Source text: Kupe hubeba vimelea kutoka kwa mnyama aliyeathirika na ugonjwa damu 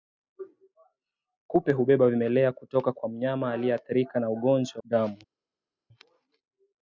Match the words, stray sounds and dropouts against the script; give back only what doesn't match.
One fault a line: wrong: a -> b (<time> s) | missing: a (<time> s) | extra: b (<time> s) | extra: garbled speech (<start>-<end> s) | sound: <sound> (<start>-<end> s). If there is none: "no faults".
no faults